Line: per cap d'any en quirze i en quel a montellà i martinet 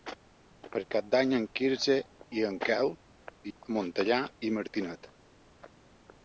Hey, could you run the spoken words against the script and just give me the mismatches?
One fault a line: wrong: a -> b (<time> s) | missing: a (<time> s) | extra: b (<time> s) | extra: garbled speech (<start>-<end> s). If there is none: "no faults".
no faults